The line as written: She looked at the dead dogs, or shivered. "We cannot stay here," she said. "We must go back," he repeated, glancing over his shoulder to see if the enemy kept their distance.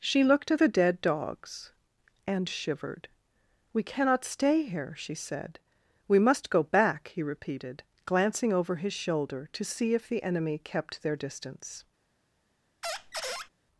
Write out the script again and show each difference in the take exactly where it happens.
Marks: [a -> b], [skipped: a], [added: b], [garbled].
She looked at the dead dogs, [or -> and] shivered. "We cannot stay here," she said. "We must go back," he repeated, glancing over his shoulder to see if the enemy kept their distance.